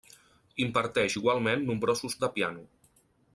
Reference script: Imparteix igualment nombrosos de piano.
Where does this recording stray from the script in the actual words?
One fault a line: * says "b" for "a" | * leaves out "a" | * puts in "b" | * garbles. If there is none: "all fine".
all fine